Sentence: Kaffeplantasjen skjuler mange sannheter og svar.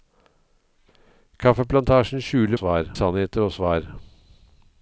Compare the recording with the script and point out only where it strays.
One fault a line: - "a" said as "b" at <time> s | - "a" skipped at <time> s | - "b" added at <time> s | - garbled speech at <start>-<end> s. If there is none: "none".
- "mange" said as "svar" at 2.5 s